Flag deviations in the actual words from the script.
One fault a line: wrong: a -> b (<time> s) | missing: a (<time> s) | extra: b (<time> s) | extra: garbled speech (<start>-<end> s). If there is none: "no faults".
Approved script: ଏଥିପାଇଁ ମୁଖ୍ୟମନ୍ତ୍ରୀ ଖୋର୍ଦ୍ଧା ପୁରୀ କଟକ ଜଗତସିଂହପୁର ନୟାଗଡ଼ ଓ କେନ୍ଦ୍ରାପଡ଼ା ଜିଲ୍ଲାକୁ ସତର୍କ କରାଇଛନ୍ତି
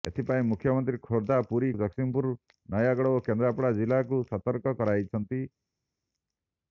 missing: କଟକ (1.7 s)